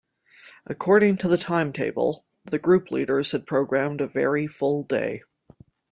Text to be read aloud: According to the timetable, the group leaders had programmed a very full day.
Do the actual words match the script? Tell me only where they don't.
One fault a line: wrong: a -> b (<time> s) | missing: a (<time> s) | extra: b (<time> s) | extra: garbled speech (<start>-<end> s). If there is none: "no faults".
no faults